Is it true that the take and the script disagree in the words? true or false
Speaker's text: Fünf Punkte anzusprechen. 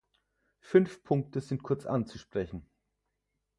true